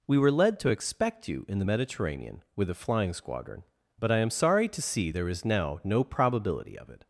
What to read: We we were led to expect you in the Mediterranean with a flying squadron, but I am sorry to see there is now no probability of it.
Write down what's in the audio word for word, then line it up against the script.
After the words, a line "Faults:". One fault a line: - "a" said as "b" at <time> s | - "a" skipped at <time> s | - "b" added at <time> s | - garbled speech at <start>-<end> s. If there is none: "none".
We were led to expect you in the Mediterranean with a flying squadron, but I am sorry to see there is now no probability of it.
Faults:
- "we" skipped at 0.2 s